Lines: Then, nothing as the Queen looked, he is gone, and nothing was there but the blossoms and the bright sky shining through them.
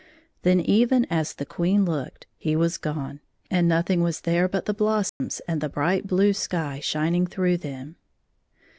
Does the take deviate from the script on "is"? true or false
true